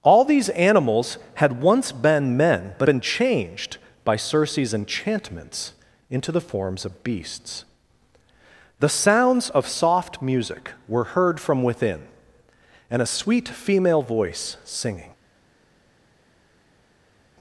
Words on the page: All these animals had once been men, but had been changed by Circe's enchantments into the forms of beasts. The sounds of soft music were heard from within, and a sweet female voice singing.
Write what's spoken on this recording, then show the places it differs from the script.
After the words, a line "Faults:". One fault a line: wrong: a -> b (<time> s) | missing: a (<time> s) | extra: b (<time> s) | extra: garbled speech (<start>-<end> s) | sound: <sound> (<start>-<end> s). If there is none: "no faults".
All these animals had once been men, but been changed by Circe's enchantments into the forms of beasts. The sounds of soft music were heard from within, and a sweet female voice singing.
Faults:
missing: had (2.9 s)